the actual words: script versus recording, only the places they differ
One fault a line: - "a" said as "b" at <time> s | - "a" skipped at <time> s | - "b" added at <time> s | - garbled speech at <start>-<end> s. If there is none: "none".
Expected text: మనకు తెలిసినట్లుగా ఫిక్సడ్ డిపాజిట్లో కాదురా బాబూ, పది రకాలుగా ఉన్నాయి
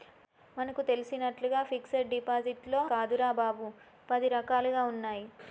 none